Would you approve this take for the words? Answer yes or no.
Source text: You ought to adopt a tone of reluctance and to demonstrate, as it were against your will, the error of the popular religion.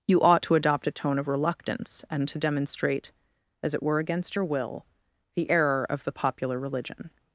yes